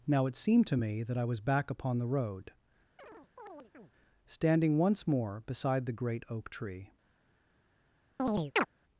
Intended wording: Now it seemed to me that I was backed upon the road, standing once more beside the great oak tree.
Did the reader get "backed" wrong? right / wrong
wrong